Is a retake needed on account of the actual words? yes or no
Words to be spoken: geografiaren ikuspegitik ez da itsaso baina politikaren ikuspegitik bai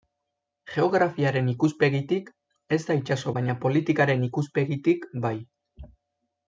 no